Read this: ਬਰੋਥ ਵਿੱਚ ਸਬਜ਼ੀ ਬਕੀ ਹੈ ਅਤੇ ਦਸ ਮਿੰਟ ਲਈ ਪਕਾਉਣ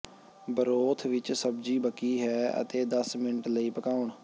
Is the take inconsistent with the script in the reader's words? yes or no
no